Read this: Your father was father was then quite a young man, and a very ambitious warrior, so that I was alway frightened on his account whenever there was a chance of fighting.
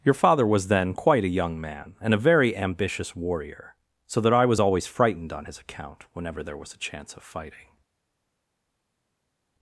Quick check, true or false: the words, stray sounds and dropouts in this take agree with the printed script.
false